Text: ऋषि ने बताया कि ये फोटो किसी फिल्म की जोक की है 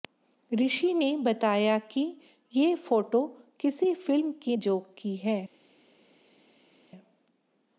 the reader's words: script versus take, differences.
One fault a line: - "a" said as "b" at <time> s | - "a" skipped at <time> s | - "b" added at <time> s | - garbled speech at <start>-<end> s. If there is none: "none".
none